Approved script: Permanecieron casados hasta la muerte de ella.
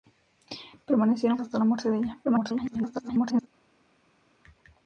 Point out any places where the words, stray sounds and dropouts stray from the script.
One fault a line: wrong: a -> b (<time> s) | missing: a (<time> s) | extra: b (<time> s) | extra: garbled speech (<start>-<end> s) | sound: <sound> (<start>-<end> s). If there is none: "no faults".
missing: casados (1.4 s)
extra: garbled speech (2.2-3.5 s)